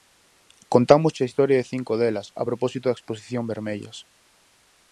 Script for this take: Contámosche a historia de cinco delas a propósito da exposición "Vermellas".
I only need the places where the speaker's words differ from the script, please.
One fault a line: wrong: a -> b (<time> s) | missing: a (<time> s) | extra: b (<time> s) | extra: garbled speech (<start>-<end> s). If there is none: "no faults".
no faults